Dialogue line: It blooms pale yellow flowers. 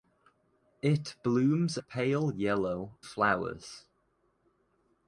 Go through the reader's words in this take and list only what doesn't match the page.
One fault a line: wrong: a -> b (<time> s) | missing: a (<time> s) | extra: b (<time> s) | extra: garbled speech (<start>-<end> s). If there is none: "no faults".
no faults